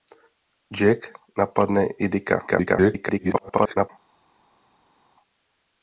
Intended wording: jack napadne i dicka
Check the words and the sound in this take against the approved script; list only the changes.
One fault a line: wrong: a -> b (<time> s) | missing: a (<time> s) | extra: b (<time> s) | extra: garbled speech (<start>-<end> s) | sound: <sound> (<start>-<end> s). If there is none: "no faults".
extra: garbled speech (2.5-3.9 s)